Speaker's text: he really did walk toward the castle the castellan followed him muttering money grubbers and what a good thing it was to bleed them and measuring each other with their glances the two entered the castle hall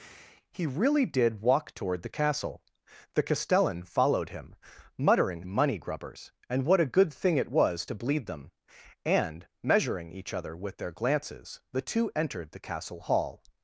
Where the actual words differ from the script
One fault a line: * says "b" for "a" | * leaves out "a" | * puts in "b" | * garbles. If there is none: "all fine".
all fine